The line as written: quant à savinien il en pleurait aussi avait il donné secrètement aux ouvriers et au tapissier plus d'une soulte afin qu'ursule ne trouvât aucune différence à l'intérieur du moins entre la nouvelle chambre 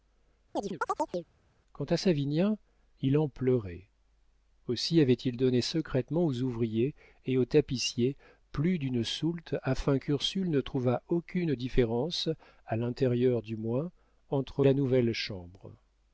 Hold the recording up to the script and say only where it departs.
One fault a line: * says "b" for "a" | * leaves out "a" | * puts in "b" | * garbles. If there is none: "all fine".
all fine